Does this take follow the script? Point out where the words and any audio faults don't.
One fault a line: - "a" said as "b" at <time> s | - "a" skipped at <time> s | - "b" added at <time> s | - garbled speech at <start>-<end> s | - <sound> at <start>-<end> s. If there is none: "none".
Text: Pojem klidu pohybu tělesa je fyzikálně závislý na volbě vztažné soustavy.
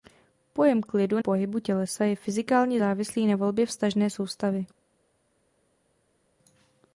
none